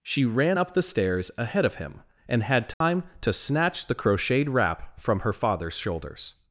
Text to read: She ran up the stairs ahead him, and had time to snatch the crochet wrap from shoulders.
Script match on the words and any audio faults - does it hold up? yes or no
no